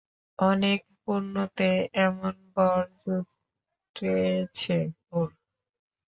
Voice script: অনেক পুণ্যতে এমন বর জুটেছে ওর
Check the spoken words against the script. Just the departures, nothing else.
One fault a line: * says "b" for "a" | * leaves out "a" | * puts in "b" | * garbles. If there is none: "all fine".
all fine